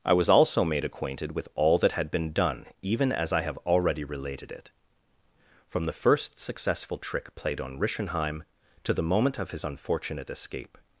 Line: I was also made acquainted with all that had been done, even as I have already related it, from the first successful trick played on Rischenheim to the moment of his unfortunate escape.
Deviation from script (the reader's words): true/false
false